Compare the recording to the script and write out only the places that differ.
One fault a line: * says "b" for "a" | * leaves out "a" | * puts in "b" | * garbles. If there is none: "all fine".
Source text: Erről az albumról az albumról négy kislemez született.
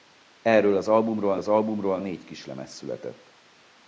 all fine